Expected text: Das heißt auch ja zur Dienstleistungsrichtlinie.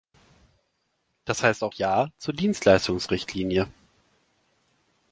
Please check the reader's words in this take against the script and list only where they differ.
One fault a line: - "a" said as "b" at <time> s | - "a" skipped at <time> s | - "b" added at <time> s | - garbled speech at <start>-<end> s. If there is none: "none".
none